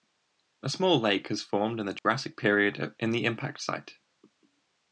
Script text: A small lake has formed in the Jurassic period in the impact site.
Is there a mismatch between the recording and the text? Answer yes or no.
no